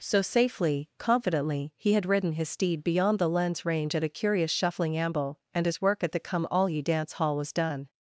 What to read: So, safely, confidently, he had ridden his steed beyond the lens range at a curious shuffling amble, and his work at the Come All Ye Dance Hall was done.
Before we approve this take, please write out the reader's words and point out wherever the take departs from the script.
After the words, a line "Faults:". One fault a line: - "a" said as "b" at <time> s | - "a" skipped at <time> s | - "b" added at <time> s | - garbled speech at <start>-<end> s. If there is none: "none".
So, safely, confidently, he had ridden his steed beyond the lens range at a curious shuffling amble, and his work at the Come All Ye Dance Hall was done.
Faults:
none